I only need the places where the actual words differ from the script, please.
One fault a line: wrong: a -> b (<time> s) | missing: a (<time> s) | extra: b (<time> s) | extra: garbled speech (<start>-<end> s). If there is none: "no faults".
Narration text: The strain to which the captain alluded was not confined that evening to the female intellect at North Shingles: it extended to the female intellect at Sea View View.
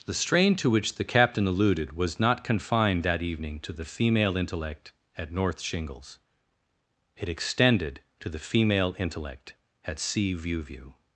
no faults